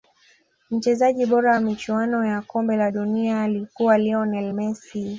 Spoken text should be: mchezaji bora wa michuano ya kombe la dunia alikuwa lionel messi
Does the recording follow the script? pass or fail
pass